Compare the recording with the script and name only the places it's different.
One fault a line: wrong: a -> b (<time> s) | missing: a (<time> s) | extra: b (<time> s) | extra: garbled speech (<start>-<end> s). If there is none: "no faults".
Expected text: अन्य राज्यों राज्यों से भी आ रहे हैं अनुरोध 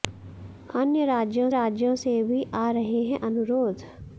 no faults